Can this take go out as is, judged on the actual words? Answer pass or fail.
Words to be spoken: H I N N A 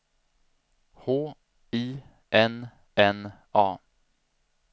pass